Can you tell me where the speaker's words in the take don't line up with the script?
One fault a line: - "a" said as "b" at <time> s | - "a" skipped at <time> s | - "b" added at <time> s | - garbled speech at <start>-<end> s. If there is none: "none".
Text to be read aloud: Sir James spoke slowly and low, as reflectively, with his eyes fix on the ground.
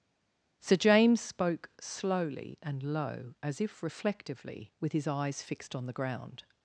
- "if" added at 3.6 s
- "fix" said as "fixed" at 5.4 s